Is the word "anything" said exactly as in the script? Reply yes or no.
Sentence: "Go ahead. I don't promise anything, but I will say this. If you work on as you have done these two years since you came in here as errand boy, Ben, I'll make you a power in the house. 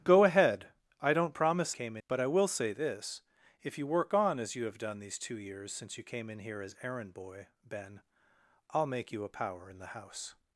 no